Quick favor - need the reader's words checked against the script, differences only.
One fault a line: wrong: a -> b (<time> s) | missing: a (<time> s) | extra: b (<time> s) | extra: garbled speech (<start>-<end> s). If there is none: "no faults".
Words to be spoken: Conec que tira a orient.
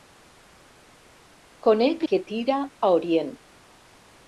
no faults